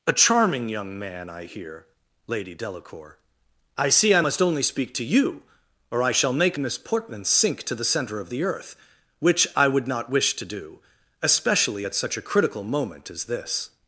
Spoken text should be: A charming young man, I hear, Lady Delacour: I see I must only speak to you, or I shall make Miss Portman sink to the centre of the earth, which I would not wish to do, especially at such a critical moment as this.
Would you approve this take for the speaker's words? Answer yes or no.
yes